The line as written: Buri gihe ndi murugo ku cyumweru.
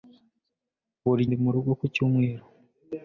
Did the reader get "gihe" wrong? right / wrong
wrong